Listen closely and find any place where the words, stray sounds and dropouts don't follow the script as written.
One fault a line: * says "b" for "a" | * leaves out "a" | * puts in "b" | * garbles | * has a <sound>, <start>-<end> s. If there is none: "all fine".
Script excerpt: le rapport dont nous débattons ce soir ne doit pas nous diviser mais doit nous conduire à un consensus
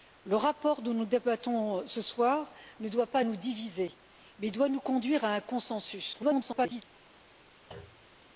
* garbles
* has a thud, 7.7-8.2 s